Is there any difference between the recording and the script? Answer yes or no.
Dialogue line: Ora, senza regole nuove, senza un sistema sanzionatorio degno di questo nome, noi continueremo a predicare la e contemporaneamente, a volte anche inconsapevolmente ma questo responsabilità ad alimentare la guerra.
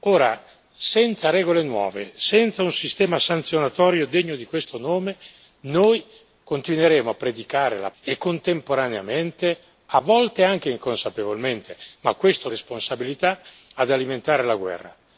no